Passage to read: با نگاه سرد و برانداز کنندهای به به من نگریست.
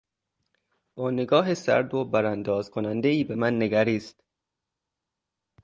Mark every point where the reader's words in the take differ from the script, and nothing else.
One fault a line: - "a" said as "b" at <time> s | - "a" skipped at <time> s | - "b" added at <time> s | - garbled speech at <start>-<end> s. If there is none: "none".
- "به" skipped at 3.4 s